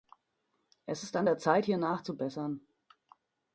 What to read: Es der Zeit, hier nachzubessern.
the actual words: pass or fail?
fail